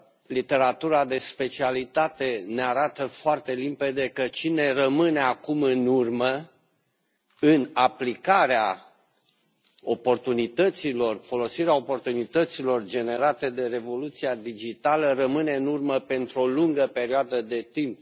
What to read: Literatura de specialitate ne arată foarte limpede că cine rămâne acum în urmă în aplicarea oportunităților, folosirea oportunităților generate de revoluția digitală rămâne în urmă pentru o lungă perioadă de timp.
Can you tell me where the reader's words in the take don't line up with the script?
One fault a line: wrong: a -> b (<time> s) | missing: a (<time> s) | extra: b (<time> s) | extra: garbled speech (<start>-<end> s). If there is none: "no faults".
no faults